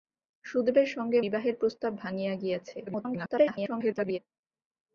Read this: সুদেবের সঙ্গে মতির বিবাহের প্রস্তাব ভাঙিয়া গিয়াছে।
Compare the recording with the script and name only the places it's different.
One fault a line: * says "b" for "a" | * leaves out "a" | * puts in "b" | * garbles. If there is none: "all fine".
* leaves out "মতির"
* garbles